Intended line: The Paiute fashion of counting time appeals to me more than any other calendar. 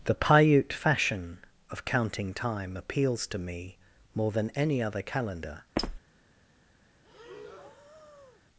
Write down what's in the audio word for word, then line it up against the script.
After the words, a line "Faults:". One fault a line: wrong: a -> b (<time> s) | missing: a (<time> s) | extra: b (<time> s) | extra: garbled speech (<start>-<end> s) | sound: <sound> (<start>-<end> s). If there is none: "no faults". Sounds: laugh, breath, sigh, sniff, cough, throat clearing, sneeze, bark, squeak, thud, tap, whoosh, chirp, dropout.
The Paiute fashion of counting time appeals to me more than any other calendar.
Faults:
sound: squeak (5.8-6.0 s)
sound: breath (7.0-8.4 s)